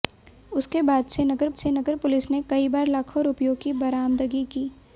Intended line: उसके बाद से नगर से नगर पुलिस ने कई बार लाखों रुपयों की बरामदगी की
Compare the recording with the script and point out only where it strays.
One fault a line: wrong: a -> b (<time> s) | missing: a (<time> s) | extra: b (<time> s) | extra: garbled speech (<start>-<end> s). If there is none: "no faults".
no faults